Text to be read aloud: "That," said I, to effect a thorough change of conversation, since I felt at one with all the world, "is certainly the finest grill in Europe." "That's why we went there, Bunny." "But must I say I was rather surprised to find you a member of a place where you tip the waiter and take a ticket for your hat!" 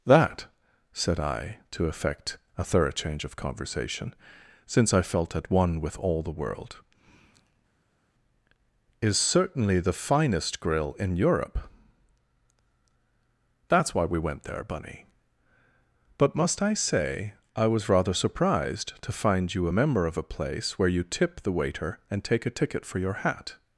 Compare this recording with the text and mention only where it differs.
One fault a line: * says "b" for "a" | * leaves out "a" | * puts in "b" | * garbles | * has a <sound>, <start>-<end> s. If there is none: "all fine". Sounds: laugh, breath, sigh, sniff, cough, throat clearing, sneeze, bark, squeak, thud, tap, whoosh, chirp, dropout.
all fine